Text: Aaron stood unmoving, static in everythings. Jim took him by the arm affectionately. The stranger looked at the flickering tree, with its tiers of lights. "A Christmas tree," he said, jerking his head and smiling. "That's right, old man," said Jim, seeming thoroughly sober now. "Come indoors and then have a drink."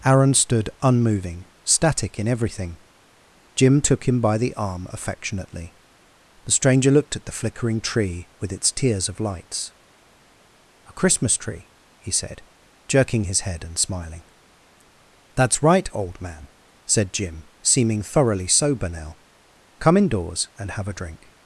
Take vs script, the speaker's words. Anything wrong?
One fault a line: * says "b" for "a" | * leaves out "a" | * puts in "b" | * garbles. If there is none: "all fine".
* says "everything" for "everythings"
* leaves out "then"